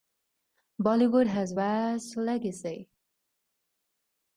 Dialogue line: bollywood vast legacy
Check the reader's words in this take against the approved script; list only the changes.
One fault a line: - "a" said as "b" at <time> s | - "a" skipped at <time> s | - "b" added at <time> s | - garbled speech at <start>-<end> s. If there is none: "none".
- "has" added at 1.2 s